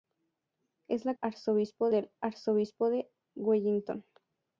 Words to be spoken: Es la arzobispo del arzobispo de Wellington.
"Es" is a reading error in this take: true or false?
false